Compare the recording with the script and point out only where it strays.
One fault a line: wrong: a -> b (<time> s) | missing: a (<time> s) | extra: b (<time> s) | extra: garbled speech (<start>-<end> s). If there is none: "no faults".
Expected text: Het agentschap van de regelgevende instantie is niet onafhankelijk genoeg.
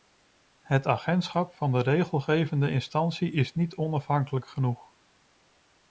no faults